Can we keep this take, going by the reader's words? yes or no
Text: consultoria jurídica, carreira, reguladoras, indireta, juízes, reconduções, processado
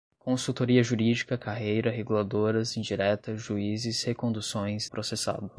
yes